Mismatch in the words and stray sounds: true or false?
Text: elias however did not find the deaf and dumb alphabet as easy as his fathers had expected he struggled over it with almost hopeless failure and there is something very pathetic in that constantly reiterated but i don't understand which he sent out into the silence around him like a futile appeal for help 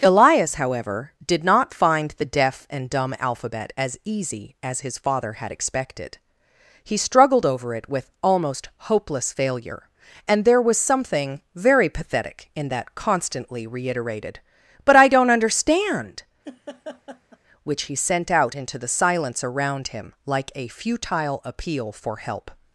true